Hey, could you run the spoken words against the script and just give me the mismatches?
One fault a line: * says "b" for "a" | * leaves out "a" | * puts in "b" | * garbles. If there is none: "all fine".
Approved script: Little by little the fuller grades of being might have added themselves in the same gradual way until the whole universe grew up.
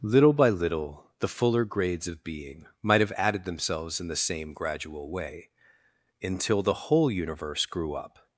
all fine